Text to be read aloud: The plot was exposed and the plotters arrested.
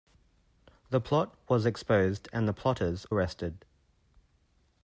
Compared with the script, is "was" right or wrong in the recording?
right